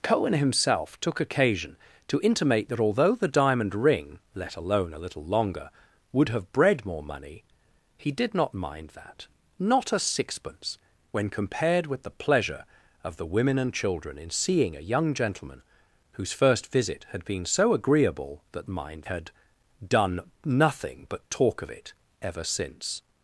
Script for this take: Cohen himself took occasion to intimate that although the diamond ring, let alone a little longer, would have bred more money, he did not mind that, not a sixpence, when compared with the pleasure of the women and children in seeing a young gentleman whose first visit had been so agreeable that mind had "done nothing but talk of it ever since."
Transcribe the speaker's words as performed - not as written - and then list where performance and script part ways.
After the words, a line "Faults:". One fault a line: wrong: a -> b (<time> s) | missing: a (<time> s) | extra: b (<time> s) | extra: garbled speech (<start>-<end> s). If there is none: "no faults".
Cohen himself took occasion to intimate that although the diamond ring, let alone a little longer, would have bred more money, he did not mind that, not a sixpence, when compared with the pleasure of the women and children in seeing a young gentleman whose first visit had been so agreeable that mind had "done nothing but talk of it ever since."
Faults:
no faults